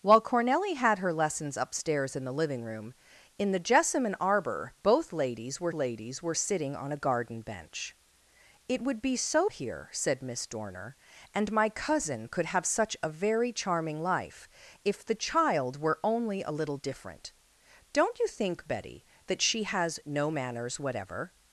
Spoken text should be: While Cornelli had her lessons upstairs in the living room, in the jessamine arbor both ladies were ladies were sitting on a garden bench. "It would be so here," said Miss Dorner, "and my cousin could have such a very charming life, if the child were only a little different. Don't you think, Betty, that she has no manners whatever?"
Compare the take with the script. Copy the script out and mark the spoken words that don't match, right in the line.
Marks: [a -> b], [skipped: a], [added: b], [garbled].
While Cornelli had her lessons upstairs in the living room, in the jessamine arbor both ladies were ladies were sitting on a garden bench. "It would be so here," said Miss Dorner, "and my cousin could have such a very charming life, if the child were only a little different. Don't you think, Betty, that she has no manners whatever?"